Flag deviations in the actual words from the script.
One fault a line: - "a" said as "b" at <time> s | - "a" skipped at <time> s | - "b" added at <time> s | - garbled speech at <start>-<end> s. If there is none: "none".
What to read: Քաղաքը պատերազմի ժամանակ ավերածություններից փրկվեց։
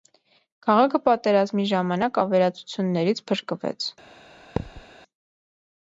none